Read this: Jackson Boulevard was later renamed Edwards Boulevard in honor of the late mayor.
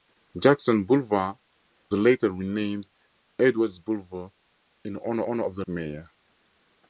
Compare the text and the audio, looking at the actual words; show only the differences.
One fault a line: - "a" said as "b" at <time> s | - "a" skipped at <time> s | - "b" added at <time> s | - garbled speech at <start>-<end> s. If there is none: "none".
- "was" skipped at 1.4 s
- "honor" added at 5.3 s
- "late" skipped at 5.6 s